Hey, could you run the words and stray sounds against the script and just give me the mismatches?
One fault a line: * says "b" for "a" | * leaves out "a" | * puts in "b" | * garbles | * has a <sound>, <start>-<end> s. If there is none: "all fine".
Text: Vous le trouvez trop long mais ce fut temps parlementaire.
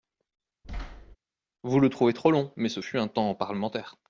* has a thud, 0.6-1.2 s
* puts in "un"